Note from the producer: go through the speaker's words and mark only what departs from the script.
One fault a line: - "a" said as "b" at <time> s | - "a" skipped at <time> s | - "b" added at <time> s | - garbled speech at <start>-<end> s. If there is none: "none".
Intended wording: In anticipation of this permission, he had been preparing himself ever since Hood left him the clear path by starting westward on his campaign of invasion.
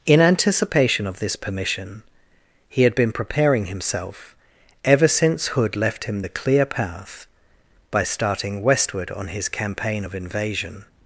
none